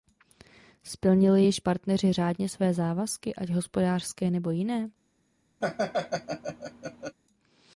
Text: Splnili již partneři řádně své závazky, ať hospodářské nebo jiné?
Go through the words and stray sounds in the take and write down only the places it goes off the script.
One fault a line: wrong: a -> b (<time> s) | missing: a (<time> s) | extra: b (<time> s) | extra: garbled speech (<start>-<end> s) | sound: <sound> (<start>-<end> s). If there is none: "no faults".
sound: laugh (5.6-7.2 s)